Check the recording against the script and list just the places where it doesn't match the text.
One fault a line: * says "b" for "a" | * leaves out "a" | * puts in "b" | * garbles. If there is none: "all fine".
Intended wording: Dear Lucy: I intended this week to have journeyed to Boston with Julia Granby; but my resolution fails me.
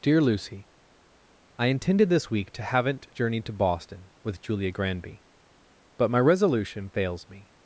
* says "haven't" for "have"